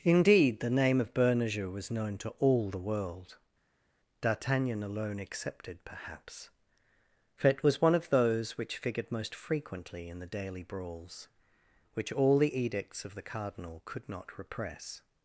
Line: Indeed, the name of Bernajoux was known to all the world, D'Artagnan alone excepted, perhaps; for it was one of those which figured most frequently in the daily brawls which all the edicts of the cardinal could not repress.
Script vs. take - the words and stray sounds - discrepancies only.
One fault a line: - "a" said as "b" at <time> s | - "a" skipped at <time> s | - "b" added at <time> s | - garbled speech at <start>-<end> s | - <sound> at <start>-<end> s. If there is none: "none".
none